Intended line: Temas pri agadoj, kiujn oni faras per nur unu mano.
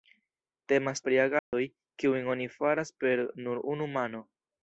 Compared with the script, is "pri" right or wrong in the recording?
right